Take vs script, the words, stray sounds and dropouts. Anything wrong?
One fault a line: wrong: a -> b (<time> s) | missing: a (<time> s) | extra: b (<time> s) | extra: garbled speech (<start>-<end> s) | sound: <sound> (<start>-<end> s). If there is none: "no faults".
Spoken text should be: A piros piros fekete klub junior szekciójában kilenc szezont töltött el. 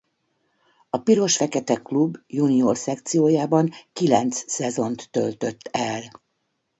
missing: piros (1.4 s)